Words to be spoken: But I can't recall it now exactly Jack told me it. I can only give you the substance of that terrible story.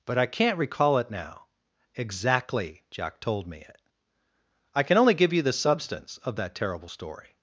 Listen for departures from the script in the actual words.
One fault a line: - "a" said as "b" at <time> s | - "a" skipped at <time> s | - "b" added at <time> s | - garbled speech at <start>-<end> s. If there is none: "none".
none